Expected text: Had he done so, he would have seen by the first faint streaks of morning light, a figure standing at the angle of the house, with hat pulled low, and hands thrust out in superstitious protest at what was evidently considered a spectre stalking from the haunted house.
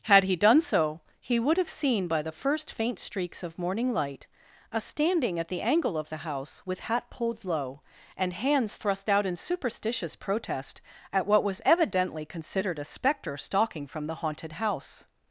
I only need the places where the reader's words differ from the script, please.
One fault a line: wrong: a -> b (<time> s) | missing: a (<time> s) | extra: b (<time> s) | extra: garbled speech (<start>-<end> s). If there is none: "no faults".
missing: figure (4.8 s)